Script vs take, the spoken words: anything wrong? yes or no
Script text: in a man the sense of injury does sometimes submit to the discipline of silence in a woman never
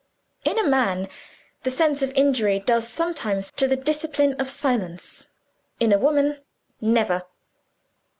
yes